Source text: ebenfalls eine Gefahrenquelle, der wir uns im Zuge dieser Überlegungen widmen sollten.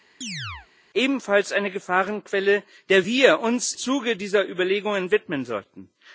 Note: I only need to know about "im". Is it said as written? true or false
false